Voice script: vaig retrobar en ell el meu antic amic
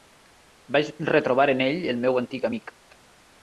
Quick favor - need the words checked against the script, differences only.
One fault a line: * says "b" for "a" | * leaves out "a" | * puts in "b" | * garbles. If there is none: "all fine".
all fine